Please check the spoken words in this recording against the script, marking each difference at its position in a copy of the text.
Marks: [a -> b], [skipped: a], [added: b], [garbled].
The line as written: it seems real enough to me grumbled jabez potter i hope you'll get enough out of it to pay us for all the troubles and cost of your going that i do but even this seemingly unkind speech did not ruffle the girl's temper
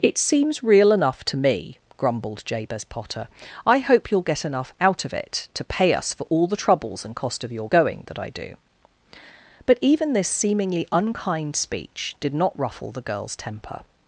it seems real enough to me grumbled jabez potter i hope you'll get enough out of it to pay us for all the troubles and cost of your going that i do but even this seemingly unkind speech did not ruffle the girl's temper